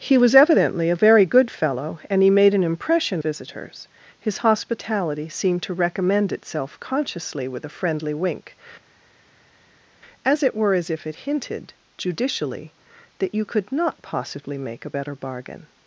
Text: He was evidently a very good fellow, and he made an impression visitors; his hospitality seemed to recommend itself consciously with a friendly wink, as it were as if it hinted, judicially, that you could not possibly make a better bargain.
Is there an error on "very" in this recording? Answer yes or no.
no